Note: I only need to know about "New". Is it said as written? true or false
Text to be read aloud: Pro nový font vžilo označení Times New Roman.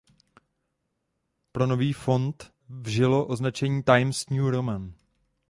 true